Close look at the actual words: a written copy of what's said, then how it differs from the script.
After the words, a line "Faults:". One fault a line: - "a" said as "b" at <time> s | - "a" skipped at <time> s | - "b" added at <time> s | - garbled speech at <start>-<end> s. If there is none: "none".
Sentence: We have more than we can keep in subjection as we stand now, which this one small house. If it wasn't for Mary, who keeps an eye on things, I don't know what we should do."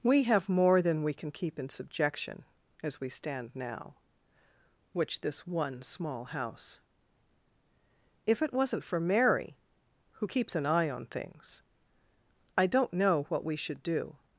We have more than we can keep in subjection as we stand now, which this one small house. If it wasn't for Mary, who keeps an eye on things, I don't know what we should do."
Faults:
none